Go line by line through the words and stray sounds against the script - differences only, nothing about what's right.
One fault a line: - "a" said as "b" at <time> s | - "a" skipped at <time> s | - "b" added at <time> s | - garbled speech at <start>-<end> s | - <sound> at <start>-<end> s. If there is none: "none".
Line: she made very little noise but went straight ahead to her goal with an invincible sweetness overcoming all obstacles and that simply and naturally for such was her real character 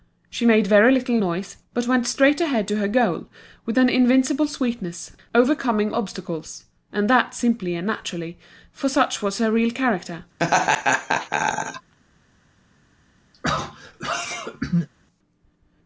- "all" skipped at 5.9 s
- laugh at 10.4-11.9 s
- throat clearing at 13.3-14.9 s